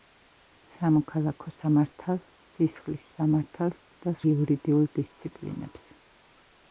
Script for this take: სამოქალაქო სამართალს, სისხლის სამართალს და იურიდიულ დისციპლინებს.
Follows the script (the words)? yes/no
yes